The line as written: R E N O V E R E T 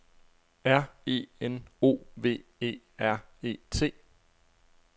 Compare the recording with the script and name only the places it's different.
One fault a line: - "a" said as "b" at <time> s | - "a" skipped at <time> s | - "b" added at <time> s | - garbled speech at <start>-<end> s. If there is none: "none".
none